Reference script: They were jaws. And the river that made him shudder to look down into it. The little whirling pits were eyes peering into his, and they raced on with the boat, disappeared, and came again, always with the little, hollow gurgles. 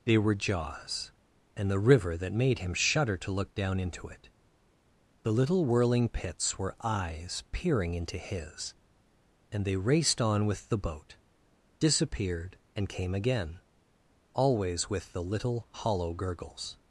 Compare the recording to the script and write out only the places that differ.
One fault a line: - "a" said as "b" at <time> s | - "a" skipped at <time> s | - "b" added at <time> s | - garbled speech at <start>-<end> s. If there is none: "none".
none